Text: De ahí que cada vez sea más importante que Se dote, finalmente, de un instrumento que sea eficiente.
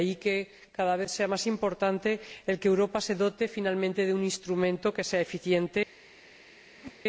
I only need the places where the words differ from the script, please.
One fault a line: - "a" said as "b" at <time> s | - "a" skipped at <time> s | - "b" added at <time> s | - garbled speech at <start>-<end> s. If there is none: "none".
- "Europa" added at 2.7 s